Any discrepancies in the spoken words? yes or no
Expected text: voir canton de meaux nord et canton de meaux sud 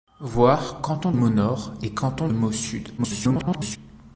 yes